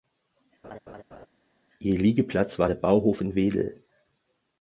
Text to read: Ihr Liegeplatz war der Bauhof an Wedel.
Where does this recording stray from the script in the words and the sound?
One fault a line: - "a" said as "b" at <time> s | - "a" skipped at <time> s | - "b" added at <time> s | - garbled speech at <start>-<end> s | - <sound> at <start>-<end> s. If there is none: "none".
- laugh at 0.6-1.3 s
- "an" said as "in" at 3.2 s